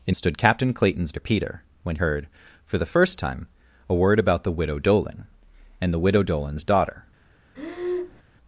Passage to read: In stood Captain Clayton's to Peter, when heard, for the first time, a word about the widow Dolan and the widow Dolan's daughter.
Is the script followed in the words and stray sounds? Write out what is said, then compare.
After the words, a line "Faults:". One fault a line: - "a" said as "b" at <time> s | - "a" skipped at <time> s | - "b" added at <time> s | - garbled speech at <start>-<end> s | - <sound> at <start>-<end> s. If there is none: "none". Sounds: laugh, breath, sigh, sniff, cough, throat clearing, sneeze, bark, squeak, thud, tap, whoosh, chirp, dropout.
In stood Captain Clayton's to Peter, when heard, for the first time, a word about the widow Dolan and the widow Dolan's daughter.
Faults:
- breath at 7.6-8.2 s